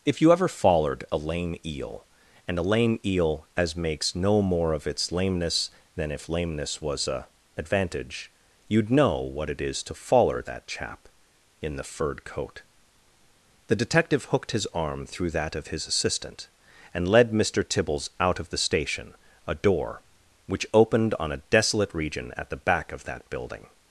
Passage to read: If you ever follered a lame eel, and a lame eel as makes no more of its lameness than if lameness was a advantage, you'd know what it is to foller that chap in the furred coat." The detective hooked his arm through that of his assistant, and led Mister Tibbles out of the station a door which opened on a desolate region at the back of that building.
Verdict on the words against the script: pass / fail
pass